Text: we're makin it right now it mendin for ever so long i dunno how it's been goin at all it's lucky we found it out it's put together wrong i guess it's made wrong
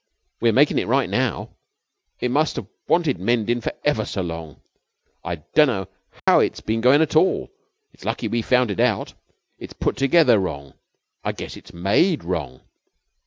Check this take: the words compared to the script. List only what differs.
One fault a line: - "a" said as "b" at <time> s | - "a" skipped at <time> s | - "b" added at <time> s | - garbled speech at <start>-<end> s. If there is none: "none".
- "must have wanted" added at 2.3 s